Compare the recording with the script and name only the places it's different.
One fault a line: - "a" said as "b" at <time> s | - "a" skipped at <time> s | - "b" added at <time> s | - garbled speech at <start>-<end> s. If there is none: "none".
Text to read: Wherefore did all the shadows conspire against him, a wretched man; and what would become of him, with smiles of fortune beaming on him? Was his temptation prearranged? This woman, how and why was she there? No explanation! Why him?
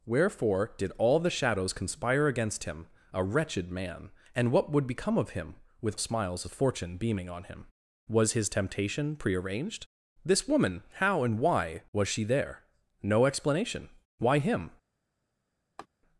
none